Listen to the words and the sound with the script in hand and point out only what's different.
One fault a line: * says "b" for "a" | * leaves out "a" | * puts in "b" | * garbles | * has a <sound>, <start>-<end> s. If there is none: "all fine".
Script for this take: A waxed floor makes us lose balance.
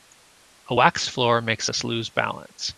all fine